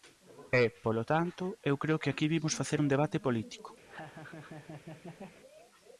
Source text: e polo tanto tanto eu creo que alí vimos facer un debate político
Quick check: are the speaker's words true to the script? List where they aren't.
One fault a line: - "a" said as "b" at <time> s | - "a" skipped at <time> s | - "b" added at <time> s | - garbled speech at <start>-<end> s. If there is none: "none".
- "tanto" skipped at 1.4 s
- "alí" said as "aquí" at 2.1 s